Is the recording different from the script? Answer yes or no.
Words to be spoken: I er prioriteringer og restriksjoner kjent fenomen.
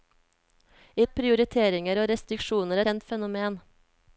no